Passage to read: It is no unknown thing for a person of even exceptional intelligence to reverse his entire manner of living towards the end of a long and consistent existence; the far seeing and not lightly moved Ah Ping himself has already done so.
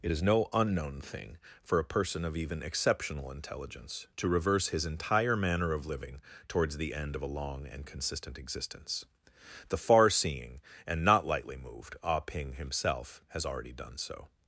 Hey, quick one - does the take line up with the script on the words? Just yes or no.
yes